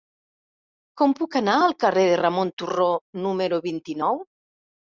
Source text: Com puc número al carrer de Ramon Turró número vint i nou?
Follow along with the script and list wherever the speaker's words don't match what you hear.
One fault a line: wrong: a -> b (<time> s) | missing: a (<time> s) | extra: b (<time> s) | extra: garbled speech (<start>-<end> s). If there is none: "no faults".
wrong: número -> anar (1.4 s)